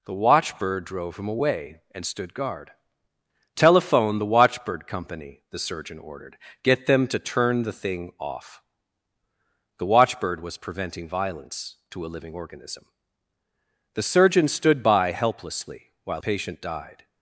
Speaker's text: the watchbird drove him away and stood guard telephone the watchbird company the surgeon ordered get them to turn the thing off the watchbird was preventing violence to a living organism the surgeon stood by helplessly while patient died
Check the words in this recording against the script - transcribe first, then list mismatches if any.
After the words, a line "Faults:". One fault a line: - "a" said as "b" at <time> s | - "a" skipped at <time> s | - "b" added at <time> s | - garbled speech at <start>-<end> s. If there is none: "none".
the watchbird drove him away and stood guard telephone the watchbird company the surgeon ordered get them to turn the thing off the watchbird was preventing violence to a living organism the surgeon stood by helplessly while patient died
Faults:
none